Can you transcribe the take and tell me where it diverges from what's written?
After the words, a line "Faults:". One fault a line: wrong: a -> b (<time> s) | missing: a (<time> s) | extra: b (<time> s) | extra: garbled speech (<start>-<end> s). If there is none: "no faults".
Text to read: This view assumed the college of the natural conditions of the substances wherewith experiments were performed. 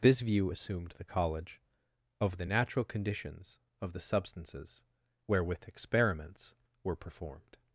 This view assumed the college of the natural conditions of the substances wherewith experiments were performed.
Faults:
no faults